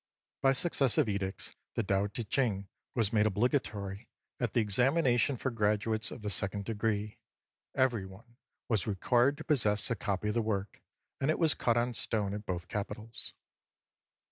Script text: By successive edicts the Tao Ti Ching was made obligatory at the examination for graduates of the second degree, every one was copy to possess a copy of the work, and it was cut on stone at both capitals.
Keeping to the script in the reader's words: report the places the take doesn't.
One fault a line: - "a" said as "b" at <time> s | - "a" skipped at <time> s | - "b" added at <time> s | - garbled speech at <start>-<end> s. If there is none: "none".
- "copy" said as "required" at 8.9 s